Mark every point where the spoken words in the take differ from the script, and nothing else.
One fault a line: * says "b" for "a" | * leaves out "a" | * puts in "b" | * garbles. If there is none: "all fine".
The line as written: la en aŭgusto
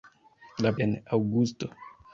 all fine